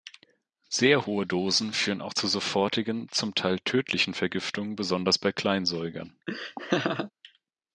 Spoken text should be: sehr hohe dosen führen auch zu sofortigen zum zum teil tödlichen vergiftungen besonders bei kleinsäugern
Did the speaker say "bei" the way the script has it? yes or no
yes